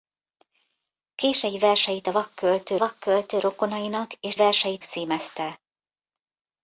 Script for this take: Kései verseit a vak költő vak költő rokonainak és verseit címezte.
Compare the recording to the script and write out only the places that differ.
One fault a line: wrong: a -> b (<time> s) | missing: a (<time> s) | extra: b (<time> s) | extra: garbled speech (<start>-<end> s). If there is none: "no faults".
no faults